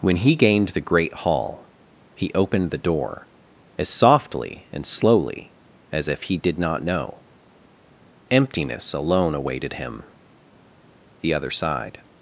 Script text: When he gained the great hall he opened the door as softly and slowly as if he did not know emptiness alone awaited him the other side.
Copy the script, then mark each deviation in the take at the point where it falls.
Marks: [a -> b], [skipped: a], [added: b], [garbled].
When he gained the great hall he opened the door as softly and slowly as if he did not know emptiness alone awaited him the other side.